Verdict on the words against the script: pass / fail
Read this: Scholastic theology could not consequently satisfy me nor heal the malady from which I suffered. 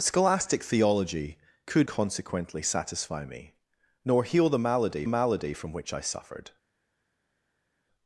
fail